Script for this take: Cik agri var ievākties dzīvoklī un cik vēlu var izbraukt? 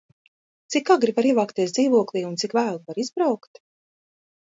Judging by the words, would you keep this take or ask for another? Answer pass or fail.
pass